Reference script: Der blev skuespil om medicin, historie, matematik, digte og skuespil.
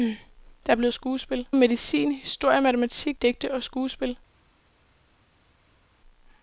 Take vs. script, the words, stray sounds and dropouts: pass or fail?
pass